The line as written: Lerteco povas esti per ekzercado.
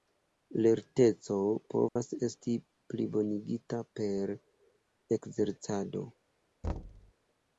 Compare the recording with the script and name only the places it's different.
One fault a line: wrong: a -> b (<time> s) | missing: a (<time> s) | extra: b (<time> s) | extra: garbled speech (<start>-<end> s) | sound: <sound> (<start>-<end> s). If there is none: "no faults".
sound: dropout (1.9-2.0 s)
extra: plibonigita (3.0 s)
sound: thud (6.6-7.1 s)